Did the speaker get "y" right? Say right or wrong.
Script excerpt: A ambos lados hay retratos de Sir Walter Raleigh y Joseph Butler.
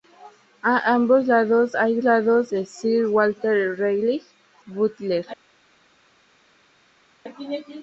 wrong